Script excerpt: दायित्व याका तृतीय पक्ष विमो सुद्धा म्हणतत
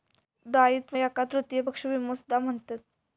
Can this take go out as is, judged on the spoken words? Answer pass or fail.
pass